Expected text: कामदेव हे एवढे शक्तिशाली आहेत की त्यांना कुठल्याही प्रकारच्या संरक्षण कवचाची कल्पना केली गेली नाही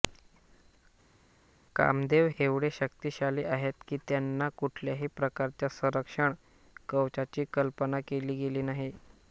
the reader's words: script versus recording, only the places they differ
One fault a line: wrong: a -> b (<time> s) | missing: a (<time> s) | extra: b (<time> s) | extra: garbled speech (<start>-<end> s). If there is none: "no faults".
missing: हे (2.3 s)